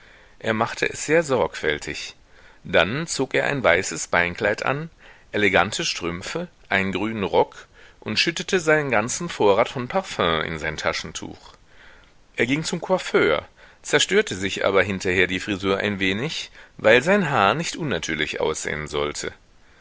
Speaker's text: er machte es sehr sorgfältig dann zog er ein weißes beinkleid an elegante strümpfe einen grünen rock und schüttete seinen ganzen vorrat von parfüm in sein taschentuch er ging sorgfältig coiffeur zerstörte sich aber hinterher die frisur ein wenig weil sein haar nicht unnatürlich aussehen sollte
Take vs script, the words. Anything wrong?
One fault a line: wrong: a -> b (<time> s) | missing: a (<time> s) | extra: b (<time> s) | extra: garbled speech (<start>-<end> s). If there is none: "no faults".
wrong: sorgfältig -> zum (12.6 s)